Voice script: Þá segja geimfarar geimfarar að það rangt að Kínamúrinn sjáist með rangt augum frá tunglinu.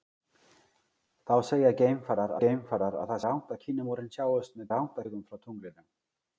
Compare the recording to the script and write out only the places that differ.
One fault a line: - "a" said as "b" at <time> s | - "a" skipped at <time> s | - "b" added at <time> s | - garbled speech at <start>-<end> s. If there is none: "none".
none